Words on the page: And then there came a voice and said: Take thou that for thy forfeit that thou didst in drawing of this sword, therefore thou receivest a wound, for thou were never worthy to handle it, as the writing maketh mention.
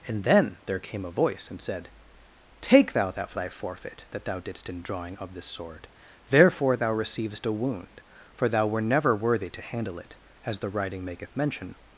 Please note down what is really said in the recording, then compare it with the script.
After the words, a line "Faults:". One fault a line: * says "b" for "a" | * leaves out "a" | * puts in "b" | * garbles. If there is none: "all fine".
And then there came a voice and said: Take thou that thy forfeit that thou didst in drawing of this sword, therefore thou receivest a wound, for thou were never worthy to handle it, as the writing maketh mention.
Faults:
* leaves out "for"